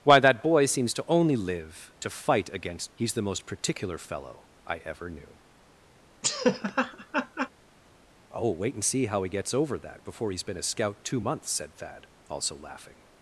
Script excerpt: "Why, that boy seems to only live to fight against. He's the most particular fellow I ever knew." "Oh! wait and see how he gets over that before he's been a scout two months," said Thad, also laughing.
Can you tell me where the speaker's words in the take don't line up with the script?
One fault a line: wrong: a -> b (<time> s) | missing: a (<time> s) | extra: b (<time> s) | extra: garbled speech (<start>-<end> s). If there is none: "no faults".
no faults